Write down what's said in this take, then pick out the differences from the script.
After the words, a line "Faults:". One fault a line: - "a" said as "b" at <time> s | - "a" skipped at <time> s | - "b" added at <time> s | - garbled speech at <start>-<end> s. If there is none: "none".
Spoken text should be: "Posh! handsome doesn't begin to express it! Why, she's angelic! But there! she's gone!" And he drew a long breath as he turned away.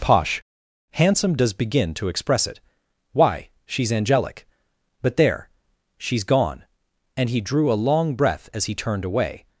"Posh! handsome does begin to express it! Why, she's angelic! But there! she's gone!" And he drew a long breath as he turned away.
Faults:
- "doesn't" said as "does" at 1.4 s